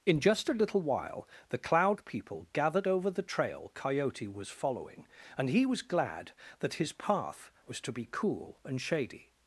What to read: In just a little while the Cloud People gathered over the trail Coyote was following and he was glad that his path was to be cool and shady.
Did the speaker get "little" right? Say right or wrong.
right